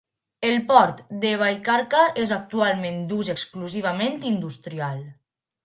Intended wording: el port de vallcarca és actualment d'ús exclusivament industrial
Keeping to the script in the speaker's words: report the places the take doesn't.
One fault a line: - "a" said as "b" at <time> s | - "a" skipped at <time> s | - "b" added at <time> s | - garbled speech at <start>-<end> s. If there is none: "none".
none